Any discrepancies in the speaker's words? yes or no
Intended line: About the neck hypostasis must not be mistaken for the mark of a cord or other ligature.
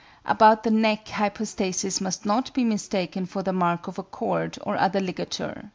no